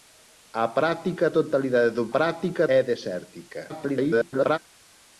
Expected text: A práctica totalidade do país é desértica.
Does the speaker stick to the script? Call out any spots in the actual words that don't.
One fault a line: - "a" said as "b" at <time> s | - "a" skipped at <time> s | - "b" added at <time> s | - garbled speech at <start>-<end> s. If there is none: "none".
- "país" said as "práctica" at 2.1 s
- garbled speech at 3.7-4.6 s